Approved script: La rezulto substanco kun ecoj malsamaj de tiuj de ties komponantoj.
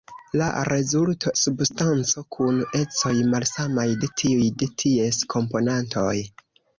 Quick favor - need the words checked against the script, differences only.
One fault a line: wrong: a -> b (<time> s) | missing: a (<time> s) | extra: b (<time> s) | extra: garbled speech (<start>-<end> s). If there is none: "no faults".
no faults